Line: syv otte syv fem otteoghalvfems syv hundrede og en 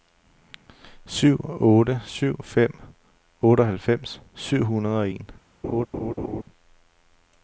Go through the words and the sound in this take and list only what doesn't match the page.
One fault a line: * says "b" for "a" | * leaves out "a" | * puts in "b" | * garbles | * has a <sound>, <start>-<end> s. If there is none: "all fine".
* has a laugh, 5.6-6.4 s